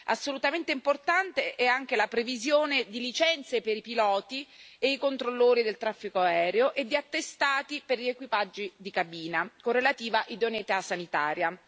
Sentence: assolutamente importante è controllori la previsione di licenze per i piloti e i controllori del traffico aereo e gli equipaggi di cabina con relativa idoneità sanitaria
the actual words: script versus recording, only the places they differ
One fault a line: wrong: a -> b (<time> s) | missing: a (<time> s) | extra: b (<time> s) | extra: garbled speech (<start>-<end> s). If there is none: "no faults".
wrong: controllori -> anche (1.6 s)
extra: di attestati per (6.8 s)